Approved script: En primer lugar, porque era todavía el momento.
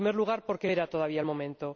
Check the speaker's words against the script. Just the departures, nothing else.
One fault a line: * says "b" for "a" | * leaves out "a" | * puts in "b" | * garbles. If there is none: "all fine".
all fine